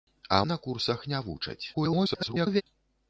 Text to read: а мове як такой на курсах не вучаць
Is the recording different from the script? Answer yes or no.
yes